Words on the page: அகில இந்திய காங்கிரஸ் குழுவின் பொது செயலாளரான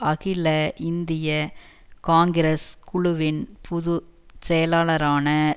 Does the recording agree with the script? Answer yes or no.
yes